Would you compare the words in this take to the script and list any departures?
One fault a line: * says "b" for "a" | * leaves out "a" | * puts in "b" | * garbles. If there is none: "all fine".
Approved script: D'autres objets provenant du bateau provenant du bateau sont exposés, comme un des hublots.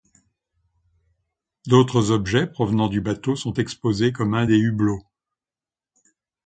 * leaves out "provenant du bateau"